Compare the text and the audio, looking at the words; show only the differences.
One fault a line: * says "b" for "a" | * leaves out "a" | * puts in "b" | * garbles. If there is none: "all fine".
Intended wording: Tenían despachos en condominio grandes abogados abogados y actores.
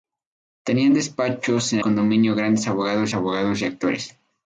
all fine